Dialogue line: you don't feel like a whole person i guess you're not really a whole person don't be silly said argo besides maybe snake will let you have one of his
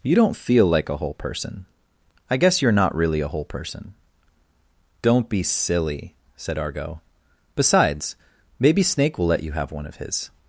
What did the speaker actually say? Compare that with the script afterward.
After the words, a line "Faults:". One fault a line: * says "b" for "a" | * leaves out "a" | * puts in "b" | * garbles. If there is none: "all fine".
you don't feel like a whole person i guess you're not really a whole person don't be silly said argo besides maybe snake will let you have one of his
Faults:
all fine